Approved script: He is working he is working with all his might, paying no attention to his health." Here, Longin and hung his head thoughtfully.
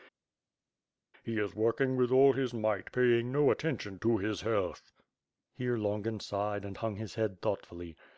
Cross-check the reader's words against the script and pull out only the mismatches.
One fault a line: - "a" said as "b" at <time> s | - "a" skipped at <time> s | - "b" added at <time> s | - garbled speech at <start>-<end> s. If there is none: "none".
- "he is working" skipped at 2.0 s
- "sighed" added at 6.2 s